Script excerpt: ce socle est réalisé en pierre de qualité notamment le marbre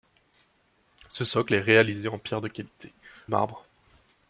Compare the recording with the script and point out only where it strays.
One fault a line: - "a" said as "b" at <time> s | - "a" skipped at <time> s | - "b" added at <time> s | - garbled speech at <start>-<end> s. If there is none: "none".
- "notamment le" skipped at 2.9 s